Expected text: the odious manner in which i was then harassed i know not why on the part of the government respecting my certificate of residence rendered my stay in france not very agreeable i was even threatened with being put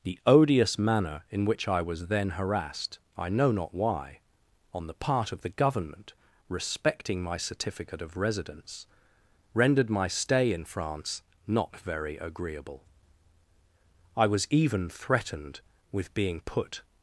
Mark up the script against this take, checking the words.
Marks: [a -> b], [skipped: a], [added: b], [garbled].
the odious manner in which i was then harassed i know not why on the part of the government respecting my certificate of residence rendered my stay in france not very agreeable i was even threatened with being put